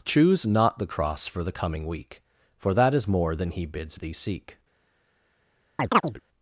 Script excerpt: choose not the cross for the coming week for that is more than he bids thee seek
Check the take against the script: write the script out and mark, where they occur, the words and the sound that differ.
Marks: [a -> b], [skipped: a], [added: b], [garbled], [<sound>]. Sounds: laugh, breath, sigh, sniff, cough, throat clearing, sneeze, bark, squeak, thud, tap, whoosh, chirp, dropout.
choose not the cross for the coming week for that is more than he bids thee seek [chirp]